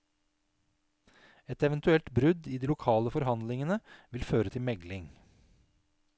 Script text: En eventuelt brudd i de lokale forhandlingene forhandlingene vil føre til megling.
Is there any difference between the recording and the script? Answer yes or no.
yes